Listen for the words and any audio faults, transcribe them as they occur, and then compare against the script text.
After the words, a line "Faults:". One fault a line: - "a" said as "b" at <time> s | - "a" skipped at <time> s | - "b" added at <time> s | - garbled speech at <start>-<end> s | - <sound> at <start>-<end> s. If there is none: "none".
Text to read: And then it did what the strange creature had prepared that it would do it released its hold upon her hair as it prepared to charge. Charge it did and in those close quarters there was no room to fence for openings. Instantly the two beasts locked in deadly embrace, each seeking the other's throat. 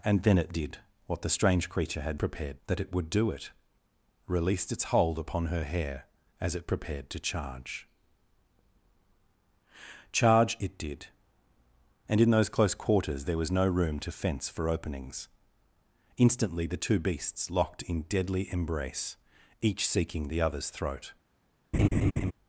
And then it did what the strange creature had prepared that it would do it released its hold upon her hair as it prepared to charge. Charge it did and in those close quarters there was no room to fence for openings. Instantly the two beasts locked in deadly embrace, each seeking the other's throat.
Faults:
- laugh at 21.7-22.3 s